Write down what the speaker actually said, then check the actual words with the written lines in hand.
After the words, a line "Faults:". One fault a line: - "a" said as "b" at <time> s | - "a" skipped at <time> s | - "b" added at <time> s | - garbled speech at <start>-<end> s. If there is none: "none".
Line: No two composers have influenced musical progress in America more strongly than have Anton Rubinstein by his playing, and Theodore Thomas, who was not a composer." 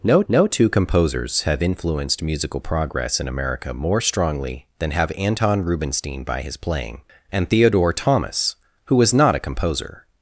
No no two composers have influenced musical progress in America more strongly than have Anton Rubinstein by his playing, and Theodore Thomas, who was not a composer."
Faults:
- "no" added at 0.3 s